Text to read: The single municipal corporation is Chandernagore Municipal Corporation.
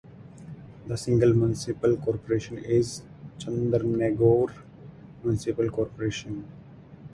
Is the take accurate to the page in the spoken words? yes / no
yes